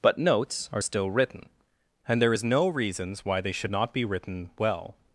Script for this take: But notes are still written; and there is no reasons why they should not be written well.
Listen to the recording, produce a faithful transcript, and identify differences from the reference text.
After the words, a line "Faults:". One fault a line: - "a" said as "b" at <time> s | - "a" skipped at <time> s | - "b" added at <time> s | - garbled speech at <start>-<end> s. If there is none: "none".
But notes are still written; and there is no reasons why they should not be written well.
Faults:
none